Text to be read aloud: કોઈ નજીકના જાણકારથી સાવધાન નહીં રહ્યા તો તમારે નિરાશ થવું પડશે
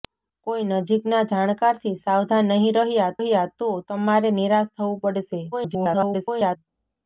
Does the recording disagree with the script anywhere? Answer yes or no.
yes